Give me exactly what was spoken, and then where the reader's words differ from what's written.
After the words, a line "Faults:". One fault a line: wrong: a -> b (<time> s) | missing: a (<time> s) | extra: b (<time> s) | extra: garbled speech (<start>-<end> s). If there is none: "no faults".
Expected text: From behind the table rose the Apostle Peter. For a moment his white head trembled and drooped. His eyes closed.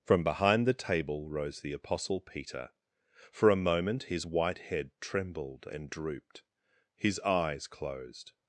From behind the table rose the Apostle Peter. For a moment his white head trembled and drooped. His eyes closed.
Faults:
no faults